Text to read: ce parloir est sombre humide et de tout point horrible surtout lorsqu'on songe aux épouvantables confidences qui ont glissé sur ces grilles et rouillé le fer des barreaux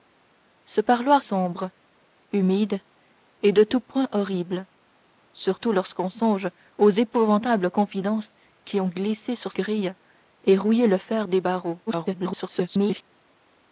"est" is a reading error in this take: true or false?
true